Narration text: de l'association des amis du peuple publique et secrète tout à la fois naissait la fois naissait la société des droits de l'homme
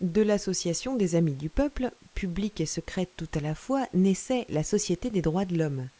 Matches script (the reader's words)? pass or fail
fail